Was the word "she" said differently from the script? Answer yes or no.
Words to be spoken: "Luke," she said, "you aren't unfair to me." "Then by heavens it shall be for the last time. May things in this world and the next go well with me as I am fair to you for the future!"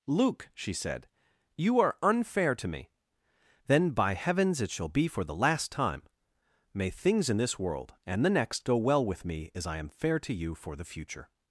no